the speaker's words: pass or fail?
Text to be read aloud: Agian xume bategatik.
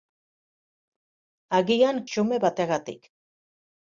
pass